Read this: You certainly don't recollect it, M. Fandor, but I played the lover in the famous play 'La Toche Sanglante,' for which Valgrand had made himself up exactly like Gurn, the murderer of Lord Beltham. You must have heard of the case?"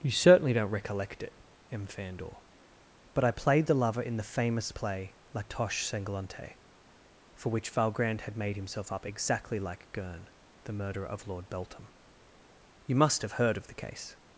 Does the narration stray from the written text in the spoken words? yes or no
no